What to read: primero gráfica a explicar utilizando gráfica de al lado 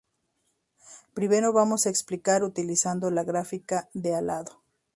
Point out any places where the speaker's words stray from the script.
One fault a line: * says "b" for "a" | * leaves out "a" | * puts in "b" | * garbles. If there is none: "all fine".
* says "vamos" for "gráfica"
* puts in "la"